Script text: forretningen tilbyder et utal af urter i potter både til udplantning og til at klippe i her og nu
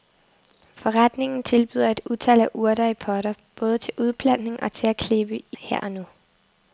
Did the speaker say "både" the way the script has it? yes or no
yes